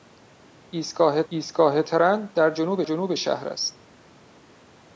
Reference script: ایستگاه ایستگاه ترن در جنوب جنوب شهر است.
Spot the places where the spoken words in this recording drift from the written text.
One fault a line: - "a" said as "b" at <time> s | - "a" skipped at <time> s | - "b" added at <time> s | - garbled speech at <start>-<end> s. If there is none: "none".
none